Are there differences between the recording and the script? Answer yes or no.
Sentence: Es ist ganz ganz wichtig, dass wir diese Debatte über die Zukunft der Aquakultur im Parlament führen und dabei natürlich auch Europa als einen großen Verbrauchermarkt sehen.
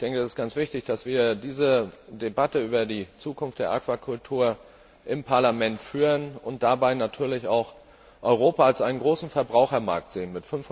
yes